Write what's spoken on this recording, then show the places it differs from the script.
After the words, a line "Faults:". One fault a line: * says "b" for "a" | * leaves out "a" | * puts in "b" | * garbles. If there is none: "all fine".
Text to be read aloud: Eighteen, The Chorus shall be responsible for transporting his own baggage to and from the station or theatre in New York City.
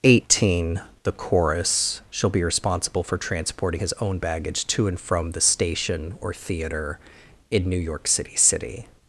Eighteen, The Chorus shall be responsible for transporting his own baggage to and from the station or theatre in New York City City.
Faults:
* puts in "City"